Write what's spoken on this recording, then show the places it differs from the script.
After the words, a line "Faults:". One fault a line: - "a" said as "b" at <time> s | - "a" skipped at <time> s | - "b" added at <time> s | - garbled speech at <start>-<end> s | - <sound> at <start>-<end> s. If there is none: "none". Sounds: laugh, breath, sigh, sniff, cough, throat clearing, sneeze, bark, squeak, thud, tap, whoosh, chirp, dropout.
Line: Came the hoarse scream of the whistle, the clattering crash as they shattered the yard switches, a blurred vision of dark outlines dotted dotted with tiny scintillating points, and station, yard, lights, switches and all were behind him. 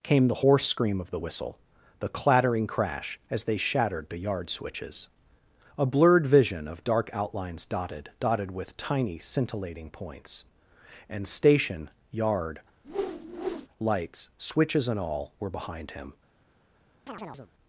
Came the hoarse scream of the whistle, the clattering crash as they shattered the yard switches, a blurred vision of dark outlines dotted dotted with tiny scintillating points, and station, yard, lights, switches and all were behind him.
Faults:
- whoosh at 12.8-13.7 s
- chirp at 17.1-17.5 s